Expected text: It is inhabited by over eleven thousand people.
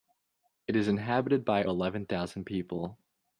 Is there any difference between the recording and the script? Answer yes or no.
yes